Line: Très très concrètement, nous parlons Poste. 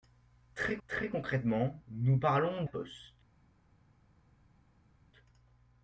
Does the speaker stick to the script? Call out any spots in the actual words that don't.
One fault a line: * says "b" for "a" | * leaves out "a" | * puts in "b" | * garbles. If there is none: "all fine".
all fine